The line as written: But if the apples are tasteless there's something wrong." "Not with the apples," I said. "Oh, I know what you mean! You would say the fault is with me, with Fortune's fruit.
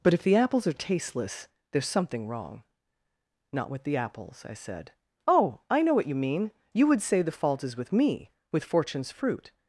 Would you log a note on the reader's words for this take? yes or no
no